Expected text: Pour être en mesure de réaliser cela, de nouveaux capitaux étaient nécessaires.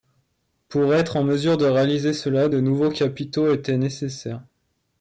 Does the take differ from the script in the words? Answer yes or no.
no